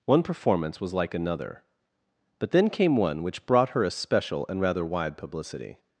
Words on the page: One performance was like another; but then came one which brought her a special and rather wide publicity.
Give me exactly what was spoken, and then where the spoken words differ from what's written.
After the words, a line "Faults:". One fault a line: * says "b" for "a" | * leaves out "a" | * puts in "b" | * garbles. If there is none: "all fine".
One performance was like another; but then came one which brought her a special and rather wide publicity.
Faults:
all fine